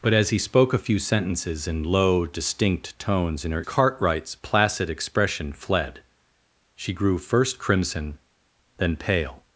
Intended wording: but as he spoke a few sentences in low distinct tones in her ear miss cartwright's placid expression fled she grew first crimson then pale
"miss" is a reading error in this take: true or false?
true